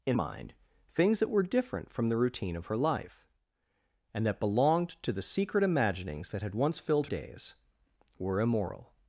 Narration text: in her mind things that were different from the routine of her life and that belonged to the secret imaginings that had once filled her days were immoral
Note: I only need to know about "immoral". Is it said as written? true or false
true